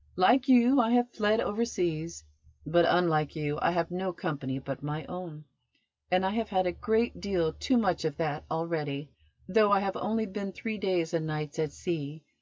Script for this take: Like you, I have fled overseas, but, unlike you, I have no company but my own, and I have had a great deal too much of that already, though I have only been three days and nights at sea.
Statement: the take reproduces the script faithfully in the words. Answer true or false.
true